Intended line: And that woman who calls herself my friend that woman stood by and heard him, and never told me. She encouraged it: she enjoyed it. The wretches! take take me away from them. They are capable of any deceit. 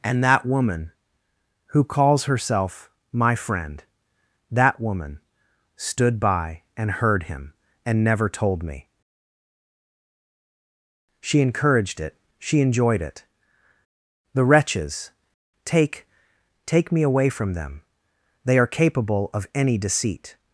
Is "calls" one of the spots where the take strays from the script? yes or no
no